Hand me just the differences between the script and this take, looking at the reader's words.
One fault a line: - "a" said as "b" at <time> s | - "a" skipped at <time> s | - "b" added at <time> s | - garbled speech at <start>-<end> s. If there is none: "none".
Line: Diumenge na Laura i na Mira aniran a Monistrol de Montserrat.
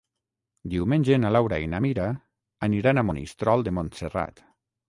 none